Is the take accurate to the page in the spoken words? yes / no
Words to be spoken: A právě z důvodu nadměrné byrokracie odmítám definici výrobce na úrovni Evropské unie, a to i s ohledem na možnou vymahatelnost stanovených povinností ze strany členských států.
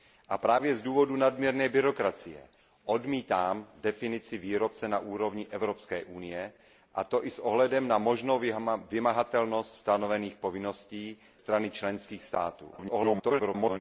no